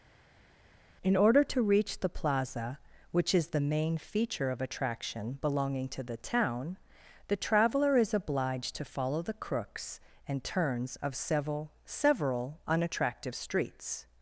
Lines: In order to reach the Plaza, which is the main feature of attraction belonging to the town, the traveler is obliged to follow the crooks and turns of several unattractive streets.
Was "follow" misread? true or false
false